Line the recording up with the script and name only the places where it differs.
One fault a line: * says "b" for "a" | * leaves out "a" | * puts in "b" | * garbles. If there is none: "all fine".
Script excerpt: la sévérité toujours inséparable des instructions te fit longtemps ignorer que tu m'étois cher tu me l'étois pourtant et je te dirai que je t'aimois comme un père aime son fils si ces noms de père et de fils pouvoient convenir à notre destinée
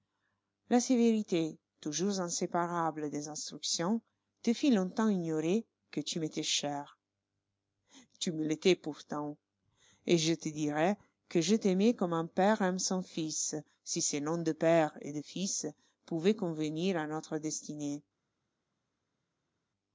all fine